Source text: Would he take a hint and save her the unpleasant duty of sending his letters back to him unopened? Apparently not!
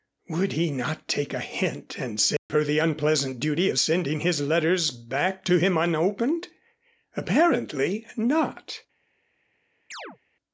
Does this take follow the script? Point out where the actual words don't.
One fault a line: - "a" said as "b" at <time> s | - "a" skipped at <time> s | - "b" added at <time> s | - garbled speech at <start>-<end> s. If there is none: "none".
- "not" added at 0.7 s